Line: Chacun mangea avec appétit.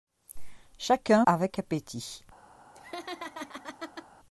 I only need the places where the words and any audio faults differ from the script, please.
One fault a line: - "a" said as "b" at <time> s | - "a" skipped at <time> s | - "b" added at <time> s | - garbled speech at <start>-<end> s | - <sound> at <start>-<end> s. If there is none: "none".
- "mangea" skipped at 1.3 s
- laugh at 2.7-4.1 s